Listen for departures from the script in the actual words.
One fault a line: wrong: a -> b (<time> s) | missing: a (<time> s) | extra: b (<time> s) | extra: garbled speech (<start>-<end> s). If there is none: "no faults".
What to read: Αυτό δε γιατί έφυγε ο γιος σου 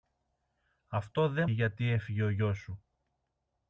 no faults